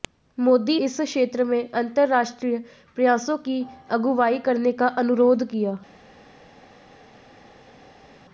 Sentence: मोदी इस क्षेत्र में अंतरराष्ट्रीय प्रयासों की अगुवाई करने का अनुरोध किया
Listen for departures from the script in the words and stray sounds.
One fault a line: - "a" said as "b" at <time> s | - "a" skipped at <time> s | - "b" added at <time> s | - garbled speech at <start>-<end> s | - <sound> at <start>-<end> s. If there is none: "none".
none